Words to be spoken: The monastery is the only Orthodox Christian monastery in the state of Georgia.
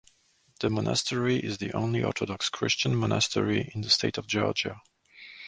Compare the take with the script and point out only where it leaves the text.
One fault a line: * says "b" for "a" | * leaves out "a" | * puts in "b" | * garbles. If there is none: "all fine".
all fine